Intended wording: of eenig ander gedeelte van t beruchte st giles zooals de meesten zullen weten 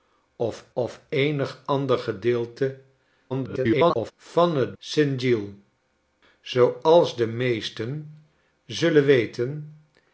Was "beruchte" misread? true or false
true